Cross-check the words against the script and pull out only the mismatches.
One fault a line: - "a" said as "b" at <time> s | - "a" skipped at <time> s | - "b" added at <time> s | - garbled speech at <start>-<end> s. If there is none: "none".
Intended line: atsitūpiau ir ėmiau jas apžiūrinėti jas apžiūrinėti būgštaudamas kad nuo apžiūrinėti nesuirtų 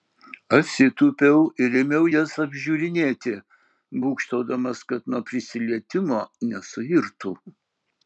- "jas apžiūrinėti" skipped at 3.4 s
- "apžiūrinėti" said as "prisilietimo" at 5.3 s